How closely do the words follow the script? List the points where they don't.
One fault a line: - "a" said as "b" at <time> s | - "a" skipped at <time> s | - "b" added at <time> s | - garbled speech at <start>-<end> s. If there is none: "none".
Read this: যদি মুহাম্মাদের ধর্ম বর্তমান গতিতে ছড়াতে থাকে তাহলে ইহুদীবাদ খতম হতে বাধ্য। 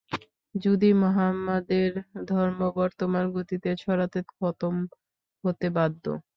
- "থাকে তাহলে ইহুদীবাদ" skipped at 4.2 s